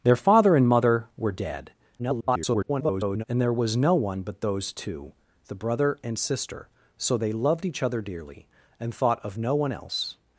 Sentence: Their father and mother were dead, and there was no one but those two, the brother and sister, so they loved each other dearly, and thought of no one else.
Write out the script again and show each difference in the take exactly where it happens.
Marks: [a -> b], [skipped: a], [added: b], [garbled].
Their father and mother were dead, [garbled] and there was no one but those two, the brother and sister, so they loved each other dearly, and thought of no one else.